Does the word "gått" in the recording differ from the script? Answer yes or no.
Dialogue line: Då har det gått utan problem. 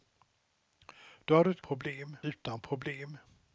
yes